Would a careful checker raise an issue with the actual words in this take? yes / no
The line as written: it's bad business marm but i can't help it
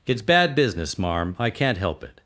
yes